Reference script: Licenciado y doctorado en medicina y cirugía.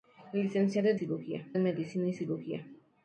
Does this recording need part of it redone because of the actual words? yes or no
yes